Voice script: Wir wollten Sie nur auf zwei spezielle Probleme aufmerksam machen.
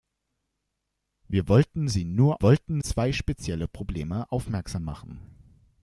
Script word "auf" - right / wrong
wrong